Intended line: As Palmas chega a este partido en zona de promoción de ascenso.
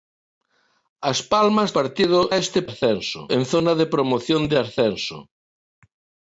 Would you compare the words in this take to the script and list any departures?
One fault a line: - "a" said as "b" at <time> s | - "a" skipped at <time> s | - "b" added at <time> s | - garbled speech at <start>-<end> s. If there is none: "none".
- "chega" said as "partido" at 1.8 s
- "partido" said as "ascenso" at 2.7 s